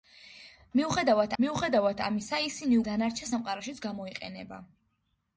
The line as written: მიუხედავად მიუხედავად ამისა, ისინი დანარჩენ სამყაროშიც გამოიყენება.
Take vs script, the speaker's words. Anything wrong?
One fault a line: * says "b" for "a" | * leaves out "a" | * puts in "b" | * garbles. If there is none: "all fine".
all fine